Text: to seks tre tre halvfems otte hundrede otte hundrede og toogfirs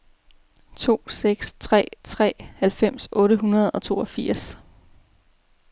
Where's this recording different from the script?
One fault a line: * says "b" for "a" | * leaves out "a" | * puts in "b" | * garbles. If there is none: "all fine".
* leaves out "otte hundrede"